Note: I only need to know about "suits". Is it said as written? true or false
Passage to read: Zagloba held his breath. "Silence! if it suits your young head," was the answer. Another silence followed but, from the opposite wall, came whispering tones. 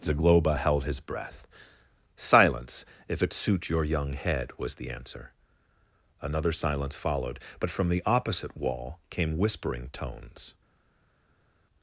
false